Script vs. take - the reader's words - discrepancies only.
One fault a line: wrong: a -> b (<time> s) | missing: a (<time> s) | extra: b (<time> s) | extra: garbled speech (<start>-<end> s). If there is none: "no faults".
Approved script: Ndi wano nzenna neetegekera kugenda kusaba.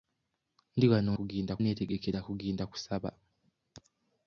wrong: nzenna -> kugenda (1.2 s)